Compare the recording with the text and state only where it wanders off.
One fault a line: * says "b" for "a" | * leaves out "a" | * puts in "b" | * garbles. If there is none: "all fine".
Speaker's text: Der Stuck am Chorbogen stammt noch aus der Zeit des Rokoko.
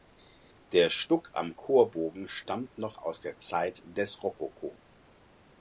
all fine